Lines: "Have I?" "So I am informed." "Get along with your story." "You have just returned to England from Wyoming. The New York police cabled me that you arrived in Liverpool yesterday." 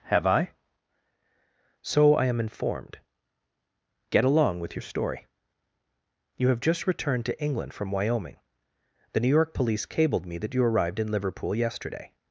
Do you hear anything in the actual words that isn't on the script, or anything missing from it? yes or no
no